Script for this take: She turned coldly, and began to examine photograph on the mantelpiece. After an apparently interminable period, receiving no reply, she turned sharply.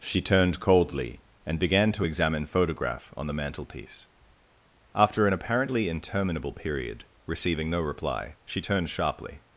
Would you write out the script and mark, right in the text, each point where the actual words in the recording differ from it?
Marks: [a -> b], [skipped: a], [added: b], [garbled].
She turned coldly, and began to examine photograph on the mantelpiece. After an apparently interminable period, receiving no reply, she turned sharply.